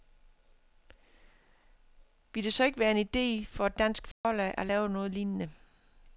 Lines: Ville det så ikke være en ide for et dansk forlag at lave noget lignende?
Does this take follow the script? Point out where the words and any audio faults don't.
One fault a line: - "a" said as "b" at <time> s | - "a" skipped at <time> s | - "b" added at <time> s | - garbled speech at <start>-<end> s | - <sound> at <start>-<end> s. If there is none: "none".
- dropout at 4.1-4.2 s